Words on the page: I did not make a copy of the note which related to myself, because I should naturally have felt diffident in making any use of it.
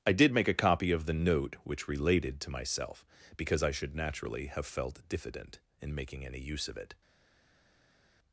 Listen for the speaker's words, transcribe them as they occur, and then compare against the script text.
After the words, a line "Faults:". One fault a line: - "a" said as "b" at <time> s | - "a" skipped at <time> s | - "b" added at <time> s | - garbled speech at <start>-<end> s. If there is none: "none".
I did make a copy of the note which related to myself, because I should naturally have felt diffident in making any use of it.
Faults:
- "not" skipped at 0.3 s